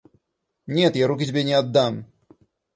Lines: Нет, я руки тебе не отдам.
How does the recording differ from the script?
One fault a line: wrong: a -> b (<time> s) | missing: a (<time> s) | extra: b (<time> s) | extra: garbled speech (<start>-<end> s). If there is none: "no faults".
no faults